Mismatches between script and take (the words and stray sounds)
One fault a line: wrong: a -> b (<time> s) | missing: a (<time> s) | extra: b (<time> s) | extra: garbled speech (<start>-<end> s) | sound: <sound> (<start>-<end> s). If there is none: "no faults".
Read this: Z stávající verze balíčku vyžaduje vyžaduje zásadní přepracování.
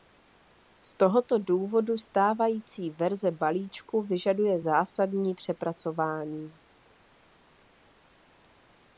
extra: tohoto důvodu (1.0 s)
missing: vyžaduje (4.6 s)